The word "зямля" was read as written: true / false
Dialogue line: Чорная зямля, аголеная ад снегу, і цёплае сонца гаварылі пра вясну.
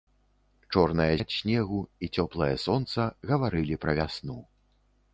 false